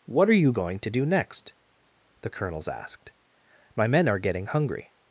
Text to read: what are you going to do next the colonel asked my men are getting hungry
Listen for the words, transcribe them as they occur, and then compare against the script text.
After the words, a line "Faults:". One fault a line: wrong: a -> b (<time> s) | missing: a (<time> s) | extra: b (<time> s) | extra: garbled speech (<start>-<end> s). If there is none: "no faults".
what are you going to do next the colonels asked my men are getting hungry
Faults:
wrong: colonel -> colonels (2.3 s)